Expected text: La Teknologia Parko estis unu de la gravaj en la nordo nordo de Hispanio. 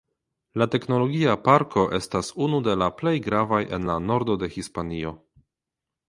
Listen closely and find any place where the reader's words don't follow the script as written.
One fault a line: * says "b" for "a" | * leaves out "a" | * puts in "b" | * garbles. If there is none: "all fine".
* says "estas" for "estis"
* puts in "plej"
* leaves out "nordo"